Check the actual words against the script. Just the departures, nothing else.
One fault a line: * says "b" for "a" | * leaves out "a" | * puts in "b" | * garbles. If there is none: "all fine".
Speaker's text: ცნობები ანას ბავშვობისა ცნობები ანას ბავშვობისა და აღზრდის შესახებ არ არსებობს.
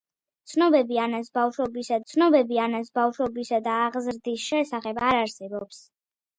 all fine